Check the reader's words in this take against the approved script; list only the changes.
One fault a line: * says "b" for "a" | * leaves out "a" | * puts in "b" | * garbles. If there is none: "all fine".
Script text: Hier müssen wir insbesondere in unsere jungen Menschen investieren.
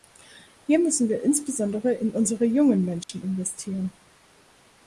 all fine